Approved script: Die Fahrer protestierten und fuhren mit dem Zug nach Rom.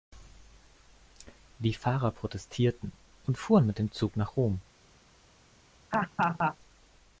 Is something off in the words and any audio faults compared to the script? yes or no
yes